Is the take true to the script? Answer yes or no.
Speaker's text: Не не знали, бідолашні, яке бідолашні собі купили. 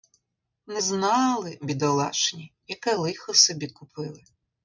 no